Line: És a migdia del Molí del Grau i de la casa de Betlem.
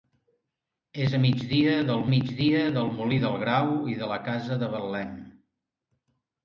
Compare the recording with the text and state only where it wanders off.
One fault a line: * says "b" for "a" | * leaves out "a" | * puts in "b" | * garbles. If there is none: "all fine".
* puts in "migdia del"